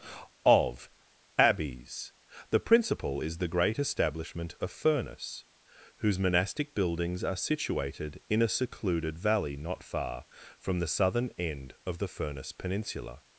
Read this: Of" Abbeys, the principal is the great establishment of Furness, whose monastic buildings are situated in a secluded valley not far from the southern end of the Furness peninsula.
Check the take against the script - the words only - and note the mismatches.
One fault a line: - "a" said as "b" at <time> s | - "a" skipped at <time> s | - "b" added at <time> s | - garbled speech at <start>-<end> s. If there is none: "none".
none